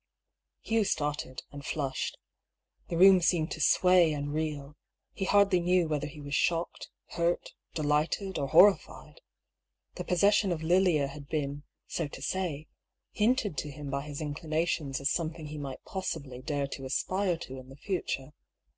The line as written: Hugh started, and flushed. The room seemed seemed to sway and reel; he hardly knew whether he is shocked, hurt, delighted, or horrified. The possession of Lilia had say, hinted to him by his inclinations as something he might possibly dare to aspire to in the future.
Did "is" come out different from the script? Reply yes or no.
yes